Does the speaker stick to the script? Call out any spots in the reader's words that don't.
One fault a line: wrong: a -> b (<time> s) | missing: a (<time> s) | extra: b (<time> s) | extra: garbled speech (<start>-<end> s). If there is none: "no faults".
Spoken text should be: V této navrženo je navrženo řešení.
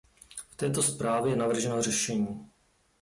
wrong: navrženo -> zprávě (0.8 s)